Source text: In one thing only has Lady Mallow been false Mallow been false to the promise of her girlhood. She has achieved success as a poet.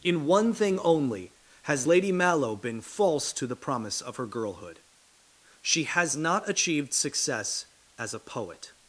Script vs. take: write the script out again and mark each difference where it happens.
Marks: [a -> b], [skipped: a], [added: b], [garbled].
In one thing only has Lady Mallow been false [skipped: Mallow been false] to the promise of her girlhood. She has [added: not] achieved success as a poet.